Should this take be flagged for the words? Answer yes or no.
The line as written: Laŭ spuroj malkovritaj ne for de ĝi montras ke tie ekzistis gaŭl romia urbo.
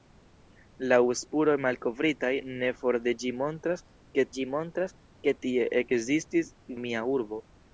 yes